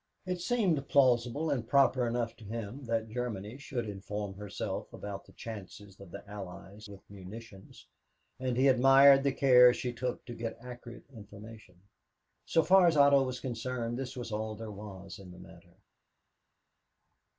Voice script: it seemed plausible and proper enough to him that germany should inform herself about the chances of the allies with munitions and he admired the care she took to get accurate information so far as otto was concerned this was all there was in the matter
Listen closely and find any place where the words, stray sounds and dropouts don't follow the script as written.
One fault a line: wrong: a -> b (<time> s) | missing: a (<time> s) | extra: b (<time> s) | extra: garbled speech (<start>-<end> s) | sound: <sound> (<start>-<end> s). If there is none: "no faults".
no faults